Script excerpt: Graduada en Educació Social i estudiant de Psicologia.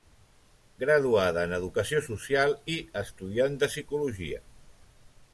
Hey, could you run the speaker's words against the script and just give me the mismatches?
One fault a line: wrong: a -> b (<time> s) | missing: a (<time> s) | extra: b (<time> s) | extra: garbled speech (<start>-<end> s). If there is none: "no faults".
no faults